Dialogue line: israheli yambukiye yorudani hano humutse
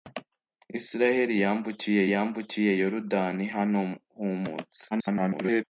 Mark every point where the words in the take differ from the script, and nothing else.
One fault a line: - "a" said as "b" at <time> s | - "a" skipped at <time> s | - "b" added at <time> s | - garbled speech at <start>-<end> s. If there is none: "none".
- "yambukiye" added at 2.1 s
- garbled speech at 4.9-5.6 s